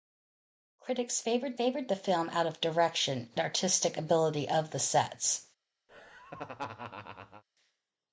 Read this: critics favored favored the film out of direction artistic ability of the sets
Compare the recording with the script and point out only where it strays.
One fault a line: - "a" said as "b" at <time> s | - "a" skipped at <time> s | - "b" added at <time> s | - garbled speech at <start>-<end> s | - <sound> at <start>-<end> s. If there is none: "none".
- laugh at 5.9-7.4 s